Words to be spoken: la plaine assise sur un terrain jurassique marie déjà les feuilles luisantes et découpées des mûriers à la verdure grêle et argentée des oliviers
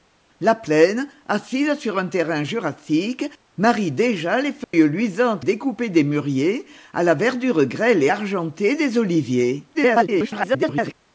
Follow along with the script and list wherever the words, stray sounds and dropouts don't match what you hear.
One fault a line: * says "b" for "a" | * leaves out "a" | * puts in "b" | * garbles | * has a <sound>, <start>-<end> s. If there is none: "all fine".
* has a dropout, 4.6-4.7 s
* leaves out "et"
* garbles